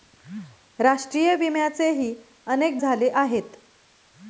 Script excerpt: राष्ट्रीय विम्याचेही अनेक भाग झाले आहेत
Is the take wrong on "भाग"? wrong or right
wrong